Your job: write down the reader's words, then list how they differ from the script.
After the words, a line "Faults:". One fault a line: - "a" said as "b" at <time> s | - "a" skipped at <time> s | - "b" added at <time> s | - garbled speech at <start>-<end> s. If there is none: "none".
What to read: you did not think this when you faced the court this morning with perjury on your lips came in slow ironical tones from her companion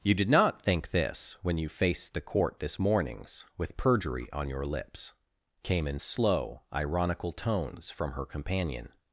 you did not think this when you faced the court this mornings with perjury on your lips came in slow ironical tones from her companion
Faults:
- "morning" said as "mornings" at 2.8 s